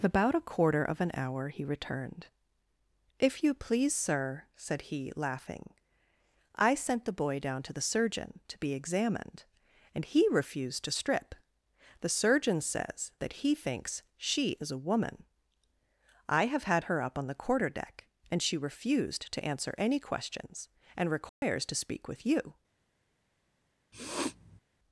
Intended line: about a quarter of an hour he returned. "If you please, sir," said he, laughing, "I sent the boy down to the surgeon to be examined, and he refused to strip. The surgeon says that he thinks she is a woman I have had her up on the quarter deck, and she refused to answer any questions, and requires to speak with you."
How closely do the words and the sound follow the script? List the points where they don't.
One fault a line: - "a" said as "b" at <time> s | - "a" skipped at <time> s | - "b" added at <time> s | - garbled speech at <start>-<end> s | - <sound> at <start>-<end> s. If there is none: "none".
- dropout at 21.3-21.4 s
- sniff at 23.9-24.6 s